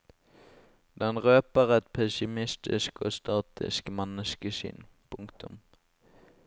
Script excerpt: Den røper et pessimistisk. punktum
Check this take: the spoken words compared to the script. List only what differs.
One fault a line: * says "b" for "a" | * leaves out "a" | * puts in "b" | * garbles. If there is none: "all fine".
* puts in "og statisk menneskesyn"